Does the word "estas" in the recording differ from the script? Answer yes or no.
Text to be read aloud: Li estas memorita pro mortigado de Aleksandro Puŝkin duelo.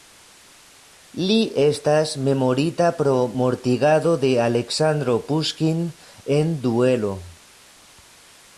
no